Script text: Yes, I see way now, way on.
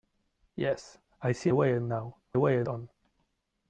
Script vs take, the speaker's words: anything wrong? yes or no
no